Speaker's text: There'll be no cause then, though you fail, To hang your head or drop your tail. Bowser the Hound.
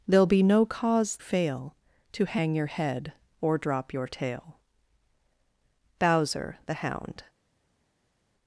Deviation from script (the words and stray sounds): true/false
true